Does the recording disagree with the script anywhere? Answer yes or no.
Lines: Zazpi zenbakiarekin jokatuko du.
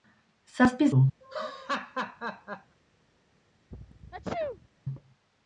yes